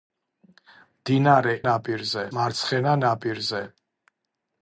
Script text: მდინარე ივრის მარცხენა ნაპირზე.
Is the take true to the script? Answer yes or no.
no